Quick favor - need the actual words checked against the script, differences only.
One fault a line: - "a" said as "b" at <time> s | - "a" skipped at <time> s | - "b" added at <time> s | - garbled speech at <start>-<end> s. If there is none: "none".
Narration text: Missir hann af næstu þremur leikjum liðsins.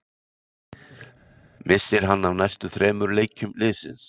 none